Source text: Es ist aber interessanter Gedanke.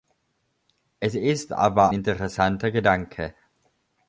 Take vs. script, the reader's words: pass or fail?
pass